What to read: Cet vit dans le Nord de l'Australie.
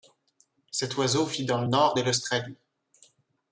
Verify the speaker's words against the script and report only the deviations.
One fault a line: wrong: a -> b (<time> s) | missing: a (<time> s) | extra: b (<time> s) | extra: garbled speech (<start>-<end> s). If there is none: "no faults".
extra: oiseau (1.0 s)